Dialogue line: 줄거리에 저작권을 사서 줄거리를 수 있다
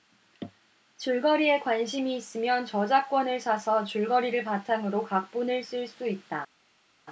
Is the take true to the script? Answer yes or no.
no